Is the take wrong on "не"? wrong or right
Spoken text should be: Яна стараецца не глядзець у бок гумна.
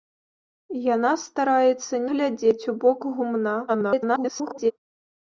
wrong